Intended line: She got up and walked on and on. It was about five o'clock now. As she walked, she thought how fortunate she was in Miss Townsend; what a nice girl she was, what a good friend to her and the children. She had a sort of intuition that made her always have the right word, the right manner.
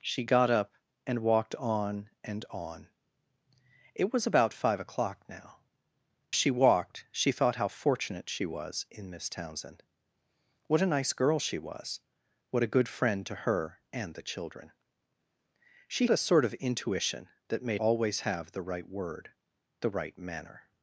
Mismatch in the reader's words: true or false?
true